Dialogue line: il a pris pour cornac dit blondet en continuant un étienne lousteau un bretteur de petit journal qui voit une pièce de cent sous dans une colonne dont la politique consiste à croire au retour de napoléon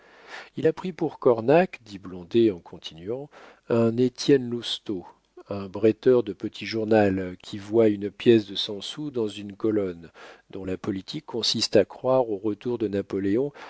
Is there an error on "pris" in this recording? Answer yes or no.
no